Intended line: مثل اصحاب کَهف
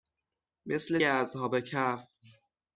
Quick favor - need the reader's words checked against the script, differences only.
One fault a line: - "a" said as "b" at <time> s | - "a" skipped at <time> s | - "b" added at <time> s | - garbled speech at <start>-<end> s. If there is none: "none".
none